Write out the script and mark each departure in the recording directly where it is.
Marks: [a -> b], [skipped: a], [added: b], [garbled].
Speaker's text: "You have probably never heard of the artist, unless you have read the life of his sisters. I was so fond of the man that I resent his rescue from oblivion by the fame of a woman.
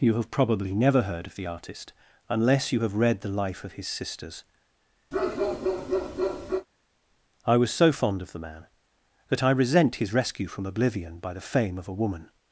"You have probably never heard of the artist, unless you have read the life of his sisters. I was so fond of the man that I resent his rescue from oblivion by the fame of a woman.